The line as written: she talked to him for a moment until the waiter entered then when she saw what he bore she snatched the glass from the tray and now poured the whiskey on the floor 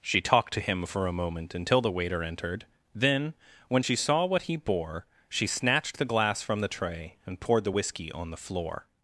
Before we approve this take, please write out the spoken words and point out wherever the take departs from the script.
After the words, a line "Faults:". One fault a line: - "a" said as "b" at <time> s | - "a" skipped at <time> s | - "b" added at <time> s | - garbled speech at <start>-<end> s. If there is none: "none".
she talked to him for a moment until the waiter entered then when she saw what he bore she snatched the glass from the tray and poured the whiskey on the floor
Faults:
- "now" skipped at 7.4 s